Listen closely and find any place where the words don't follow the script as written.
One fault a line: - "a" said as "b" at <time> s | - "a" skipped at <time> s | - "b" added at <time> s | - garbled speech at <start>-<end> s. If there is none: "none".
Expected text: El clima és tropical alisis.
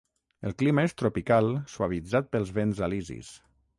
- "suavitzat pels vents" added at 1.7 s